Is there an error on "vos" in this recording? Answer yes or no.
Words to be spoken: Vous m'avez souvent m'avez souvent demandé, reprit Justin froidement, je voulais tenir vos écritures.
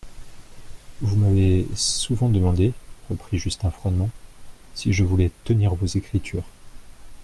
no